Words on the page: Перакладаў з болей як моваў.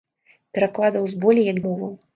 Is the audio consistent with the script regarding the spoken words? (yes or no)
yes